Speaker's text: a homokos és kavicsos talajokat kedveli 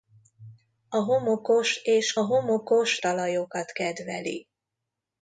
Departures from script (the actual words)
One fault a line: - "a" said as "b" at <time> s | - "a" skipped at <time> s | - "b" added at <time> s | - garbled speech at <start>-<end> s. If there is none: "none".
- "kavicsos" said as "homokos" at 2.2 s